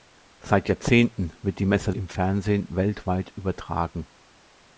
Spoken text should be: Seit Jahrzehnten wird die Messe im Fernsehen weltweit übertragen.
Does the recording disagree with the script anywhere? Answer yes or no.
no